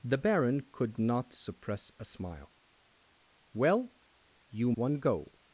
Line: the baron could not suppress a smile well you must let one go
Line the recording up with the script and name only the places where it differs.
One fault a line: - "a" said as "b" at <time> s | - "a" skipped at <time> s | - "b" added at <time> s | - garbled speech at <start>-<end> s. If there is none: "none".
- "must let" skipped at 4.7 s